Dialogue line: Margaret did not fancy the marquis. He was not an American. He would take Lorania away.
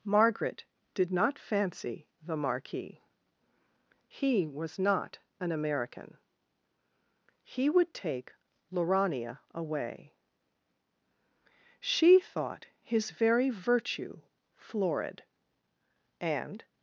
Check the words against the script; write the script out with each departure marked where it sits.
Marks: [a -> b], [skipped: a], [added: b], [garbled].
Margaret did not fancy the marquis. He was not an American. He would take Lorania away. [added: She thought his very virtue florid and]